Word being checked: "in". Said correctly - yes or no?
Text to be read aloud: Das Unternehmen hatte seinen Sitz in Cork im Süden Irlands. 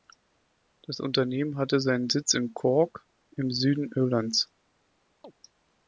yes